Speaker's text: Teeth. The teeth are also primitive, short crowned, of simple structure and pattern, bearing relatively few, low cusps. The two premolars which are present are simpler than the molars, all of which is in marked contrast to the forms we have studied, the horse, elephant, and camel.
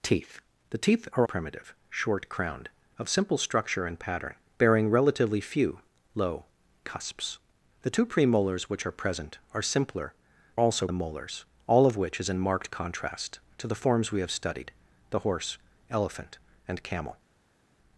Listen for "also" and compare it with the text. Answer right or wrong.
wrong